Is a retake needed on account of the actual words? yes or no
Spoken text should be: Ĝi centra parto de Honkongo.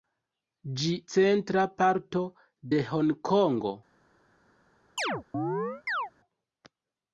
no